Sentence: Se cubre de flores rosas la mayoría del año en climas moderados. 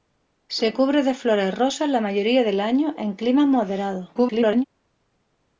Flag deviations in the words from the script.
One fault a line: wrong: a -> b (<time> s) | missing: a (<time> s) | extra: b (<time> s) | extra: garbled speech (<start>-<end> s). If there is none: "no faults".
extra: garbled speech (4.1-4.6 s)